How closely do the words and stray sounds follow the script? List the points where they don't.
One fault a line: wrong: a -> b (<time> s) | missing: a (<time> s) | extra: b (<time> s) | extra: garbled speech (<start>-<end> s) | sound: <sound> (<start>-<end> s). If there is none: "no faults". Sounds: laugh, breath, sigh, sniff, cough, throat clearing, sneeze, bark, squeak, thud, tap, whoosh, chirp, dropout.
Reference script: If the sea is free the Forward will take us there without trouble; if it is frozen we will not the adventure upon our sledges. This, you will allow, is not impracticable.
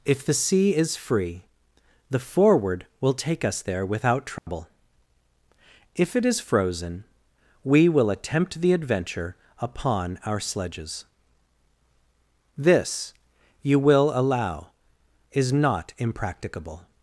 sound: dropout (4.4-4.5 s)
wrong: not -> attempt (8.1 s)